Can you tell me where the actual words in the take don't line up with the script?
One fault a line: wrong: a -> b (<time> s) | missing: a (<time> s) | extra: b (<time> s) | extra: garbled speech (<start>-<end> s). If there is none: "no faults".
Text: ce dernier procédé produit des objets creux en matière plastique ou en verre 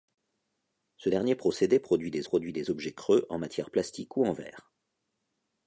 extra: produit des (2.2 s)